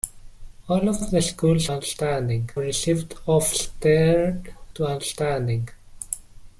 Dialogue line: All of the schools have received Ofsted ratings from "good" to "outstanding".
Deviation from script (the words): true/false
true